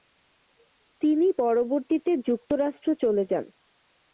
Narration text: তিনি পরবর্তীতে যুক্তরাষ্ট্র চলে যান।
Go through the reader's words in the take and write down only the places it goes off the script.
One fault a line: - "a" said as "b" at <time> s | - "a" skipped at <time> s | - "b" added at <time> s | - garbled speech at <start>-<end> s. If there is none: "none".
none